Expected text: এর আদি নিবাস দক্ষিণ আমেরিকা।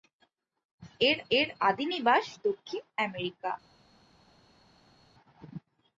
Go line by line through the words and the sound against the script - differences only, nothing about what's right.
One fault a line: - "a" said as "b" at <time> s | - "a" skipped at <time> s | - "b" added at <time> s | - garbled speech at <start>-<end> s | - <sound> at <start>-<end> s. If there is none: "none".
- "এর" added at 1.3 s